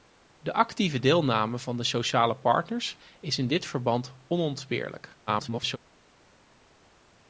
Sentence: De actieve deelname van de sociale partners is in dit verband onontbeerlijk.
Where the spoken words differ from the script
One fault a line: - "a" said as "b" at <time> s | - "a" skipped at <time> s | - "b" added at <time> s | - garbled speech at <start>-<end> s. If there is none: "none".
- garbled speech at 5.3-5.8 s